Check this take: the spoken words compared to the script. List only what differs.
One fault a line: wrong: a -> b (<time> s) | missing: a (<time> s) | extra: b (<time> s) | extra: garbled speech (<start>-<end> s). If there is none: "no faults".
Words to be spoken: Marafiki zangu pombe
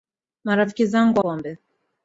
no faults